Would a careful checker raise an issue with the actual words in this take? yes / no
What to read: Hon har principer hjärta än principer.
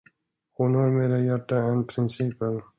yes